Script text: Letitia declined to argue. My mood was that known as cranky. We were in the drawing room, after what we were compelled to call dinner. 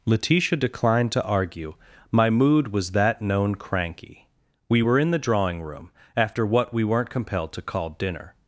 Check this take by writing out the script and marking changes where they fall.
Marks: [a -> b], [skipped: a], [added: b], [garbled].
Letitia declined to argue. My mood was that known [skipped: as] cranky. We were in the drawing room, after what we [were -> weren't] compelled to call dinner.